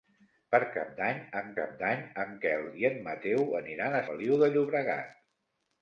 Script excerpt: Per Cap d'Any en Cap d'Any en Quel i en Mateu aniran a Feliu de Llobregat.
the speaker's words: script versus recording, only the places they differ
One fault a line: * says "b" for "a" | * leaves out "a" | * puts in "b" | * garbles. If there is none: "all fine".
all fine